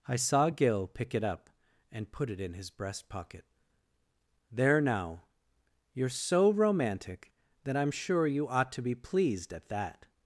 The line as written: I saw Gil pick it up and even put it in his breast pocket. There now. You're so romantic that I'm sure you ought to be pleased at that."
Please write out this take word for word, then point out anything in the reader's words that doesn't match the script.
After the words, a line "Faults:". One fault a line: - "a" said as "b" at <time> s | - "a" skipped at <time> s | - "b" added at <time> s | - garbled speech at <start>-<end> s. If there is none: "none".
I saw Gil pick it up and put it in his breast pocket. There now. You're so romantic that I'm sure you ought to be pleased at that."
Faults:
- "even" skipped at 2.1 s